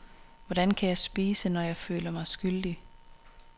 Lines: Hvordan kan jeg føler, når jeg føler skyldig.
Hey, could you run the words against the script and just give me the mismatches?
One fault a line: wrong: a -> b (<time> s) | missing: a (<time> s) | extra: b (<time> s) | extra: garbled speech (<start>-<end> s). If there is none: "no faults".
wrong: føler -> spise (1.0 s)
extra: mig (2.1 s)